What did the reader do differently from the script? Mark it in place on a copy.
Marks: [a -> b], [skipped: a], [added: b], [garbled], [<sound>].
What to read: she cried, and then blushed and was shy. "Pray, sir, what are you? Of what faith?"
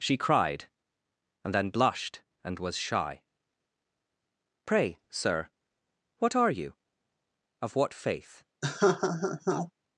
she cried, and then blushed and was shy. "Pray, sir, what are you? Of what faith?" [laugh]